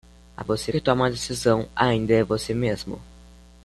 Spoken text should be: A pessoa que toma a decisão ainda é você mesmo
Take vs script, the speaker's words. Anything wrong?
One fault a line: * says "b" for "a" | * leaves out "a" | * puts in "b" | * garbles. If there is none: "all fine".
* says "você" for "pessoa"